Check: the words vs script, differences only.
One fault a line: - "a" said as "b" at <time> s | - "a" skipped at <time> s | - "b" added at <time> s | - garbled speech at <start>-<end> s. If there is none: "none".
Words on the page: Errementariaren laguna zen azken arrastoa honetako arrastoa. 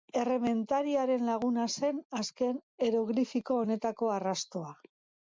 - "arrastoa" said as "eroglifiko" at 2.9 s